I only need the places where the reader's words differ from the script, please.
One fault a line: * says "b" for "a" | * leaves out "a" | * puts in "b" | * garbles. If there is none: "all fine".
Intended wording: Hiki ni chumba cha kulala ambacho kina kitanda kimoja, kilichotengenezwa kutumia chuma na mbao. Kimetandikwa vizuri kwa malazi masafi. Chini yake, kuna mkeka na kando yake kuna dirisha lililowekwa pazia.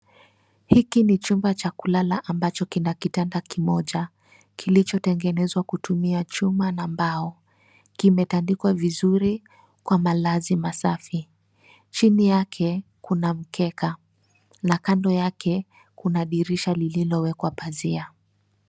all fine